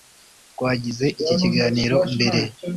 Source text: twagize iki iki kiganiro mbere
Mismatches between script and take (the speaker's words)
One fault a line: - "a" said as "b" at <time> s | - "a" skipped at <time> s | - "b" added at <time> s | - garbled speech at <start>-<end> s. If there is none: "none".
- "iki" skipped at 1.4 s